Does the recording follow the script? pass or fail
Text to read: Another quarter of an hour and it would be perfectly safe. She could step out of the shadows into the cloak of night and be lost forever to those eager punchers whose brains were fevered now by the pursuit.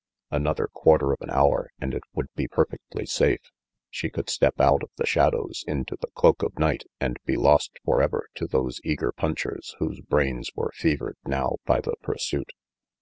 pass